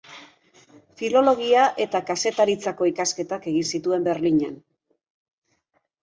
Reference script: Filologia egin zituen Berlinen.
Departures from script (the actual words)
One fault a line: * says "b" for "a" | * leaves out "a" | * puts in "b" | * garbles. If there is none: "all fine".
* puts in "eta kazetaritzako ikasketak"